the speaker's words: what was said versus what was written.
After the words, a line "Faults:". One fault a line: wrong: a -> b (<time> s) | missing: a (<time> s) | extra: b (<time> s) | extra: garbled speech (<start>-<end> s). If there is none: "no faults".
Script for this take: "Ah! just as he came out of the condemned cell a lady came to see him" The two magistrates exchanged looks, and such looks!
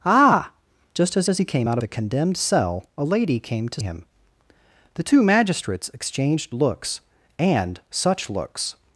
"Ah! just as as he came out the condemned cell a lady came to him" The two magistrates exchanged looks, and such looks!
Faults:
extra: as (1.3 s)
missing: of (1.8 s)
missing: see (3.8 s)